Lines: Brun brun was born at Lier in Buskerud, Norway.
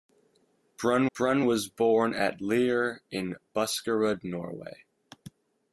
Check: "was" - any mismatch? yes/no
no